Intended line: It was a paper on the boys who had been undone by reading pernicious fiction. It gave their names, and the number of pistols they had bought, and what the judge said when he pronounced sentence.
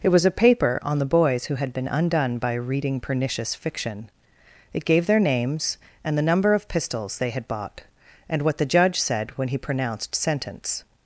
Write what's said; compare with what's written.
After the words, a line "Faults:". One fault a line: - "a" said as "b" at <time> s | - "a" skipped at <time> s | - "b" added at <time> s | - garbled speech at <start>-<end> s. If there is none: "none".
It was a paper on the boys who had been undone by reading pernicious fiction. It gave their names, and the number of pistols they had bought, and what the judge said when he pronounced sentence.
Faults:
none